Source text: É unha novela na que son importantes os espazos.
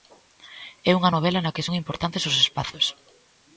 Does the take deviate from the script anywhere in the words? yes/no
no